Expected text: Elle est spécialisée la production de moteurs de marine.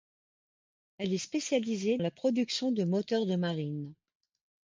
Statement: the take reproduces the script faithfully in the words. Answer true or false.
true